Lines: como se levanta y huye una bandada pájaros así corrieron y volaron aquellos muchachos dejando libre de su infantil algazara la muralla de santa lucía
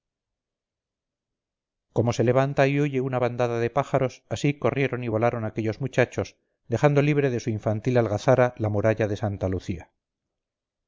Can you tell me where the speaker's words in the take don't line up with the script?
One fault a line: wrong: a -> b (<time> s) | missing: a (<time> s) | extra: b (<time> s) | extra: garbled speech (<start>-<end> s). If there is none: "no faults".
extra: de (3.6 s)